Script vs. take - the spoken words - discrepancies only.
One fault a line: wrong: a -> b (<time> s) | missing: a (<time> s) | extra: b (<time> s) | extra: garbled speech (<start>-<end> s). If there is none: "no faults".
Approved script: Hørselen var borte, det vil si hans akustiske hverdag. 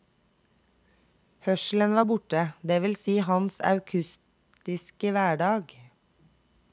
no faults